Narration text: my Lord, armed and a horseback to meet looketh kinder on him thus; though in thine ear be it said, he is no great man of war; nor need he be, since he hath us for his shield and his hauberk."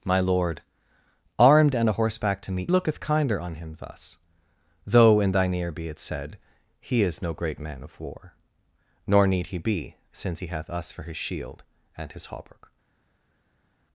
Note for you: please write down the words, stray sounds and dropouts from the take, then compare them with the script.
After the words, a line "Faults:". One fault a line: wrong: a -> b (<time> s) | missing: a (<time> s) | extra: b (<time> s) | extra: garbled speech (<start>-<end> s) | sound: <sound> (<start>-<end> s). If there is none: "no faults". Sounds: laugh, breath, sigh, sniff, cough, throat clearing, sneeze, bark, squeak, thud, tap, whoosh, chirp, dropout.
my Lord, armed and a horseback to meet looketh kinder on him thus; though in thine ear be it said, he is no great man of war; nor need he be, since he hath us for his shield and his hauberk."
Faults:
no faults